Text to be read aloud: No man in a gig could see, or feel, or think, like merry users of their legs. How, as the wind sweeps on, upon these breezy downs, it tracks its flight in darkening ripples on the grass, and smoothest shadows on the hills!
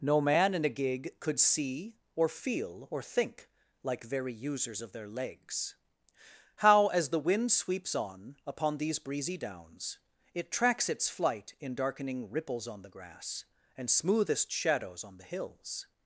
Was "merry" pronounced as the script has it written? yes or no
no